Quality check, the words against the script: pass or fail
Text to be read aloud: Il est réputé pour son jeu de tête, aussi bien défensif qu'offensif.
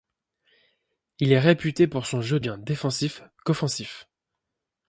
fail